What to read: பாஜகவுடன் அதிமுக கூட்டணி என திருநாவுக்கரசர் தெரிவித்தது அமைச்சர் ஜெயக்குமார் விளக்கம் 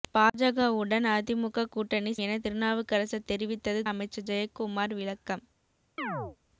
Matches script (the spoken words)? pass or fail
pass